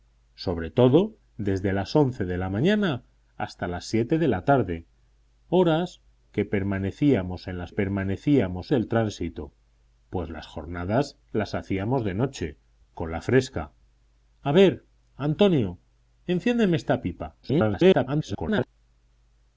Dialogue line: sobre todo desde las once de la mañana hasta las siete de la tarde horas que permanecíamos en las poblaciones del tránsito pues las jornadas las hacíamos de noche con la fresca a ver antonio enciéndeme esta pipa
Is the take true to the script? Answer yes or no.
no